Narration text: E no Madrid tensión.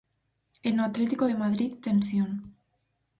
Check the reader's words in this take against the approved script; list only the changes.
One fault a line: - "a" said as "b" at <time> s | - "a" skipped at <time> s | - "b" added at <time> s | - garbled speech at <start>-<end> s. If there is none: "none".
- "Atlético de" added at 0.9 s